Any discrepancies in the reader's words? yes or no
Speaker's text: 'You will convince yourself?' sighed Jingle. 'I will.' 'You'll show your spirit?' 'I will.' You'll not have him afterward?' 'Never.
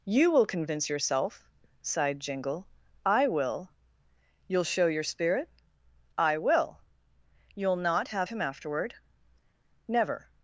no